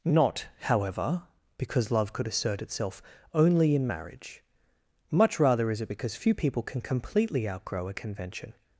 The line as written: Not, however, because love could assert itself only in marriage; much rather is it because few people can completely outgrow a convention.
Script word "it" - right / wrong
right